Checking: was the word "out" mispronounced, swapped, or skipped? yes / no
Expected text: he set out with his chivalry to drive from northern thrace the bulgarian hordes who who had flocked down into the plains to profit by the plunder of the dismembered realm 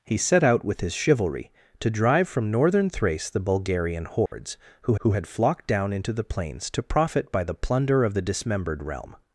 no